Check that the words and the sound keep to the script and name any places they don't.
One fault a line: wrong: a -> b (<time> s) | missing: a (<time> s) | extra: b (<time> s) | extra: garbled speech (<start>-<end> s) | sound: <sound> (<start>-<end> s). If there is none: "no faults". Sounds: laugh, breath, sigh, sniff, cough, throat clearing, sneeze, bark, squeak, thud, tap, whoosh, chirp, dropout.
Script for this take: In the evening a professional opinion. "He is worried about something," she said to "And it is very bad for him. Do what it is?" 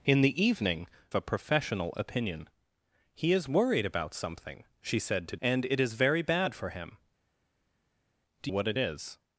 no faults